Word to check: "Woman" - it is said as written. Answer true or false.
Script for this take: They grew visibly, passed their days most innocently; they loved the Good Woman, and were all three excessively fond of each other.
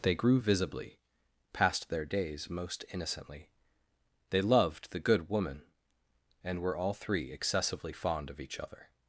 true